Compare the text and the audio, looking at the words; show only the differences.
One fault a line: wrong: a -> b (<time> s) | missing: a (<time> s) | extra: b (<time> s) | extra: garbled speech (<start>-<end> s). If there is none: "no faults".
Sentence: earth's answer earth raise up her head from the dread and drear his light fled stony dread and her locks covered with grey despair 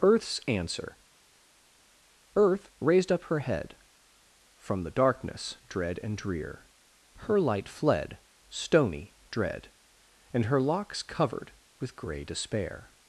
wrong: raise -> raised (2.8 s)
extra: darkness (4.9 s)
wrong: his -> her (7.1 s)